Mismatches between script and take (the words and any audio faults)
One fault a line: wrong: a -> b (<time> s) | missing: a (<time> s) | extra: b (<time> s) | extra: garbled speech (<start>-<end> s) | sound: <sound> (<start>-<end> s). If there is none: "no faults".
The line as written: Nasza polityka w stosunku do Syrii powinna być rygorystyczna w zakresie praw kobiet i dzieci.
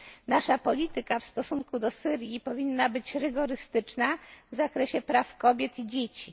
no faults